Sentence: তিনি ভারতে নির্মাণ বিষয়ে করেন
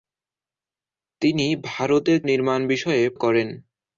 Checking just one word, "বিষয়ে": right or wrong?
right